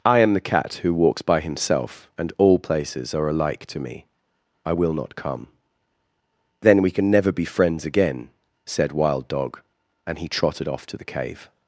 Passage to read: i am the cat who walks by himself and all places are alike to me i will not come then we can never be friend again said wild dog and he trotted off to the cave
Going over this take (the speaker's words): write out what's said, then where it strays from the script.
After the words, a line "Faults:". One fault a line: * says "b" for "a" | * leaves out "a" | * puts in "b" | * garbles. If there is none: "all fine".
i am the cat who walks by himself and all places are alike to me i will not come then we can never be friends again said wild dog and he trotted off to the cave
Faults:
* says "friends" for "friend"